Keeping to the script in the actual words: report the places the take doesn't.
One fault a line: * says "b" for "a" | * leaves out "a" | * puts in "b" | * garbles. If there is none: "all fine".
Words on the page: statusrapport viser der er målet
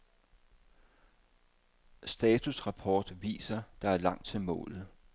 * puts in "langt til"